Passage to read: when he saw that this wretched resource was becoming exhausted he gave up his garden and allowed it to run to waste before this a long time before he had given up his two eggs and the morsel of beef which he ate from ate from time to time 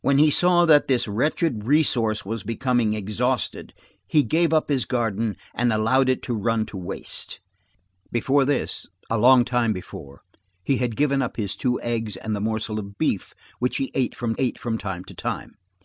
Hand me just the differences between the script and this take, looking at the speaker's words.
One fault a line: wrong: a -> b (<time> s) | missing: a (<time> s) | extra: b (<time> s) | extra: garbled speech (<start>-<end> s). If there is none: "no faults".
no faults